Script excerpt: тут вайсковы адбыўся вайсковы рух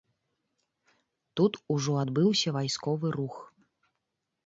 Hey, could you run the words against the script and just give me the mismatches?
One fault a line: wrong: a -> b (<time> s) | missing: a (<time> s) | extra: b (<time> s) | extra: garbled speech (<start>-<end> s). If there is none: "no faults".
wrong: вайсковы -> ужо (1.8 s)